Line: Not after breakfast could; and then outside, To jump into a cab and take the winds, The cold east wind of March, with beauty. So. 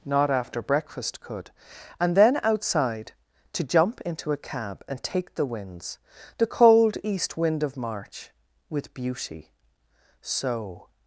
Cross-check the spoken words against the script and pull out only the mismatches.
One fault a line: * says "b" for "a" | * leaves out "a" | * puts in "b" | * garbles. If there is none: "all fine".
all fine